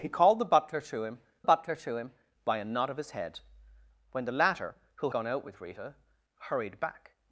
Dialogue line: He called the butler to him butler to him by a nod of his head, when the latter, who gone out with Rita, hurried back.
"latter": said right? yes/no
yes